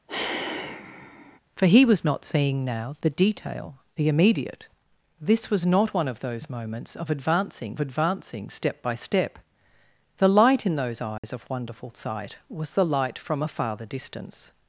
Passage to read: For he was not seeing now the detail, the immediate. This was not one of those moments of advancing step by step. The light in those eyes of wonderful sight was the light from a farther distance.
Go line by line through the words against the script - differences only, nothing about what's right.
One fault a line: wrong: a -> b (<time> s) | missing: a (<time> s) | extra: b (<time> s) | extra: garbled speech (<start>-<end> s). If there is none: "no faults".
extra: advancing (7.8 s)